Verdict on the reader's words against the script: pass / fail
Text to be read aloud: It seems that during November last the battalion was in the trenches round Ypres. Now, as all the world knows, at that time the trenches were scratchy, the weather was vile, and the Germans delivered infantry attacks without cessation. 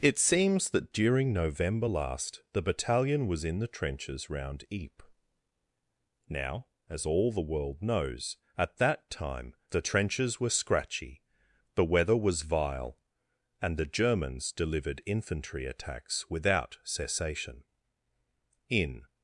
fail